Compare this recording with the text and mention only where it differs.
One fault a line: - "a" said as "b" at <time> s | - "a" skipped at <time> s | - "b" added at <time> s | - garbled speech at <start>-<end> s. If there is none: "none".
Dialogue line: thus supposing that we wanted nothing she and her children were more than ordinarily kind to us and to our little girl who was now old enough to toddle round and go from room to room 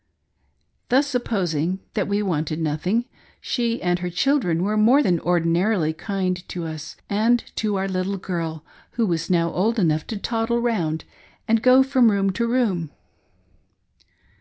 none